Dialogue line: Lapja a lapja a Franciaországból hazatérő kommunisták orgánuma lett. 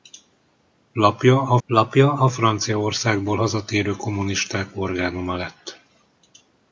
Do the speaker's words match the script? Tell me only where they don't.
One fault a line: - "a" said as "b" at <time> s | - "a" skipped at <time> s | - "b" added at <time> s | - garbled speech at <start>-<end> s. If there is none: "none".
none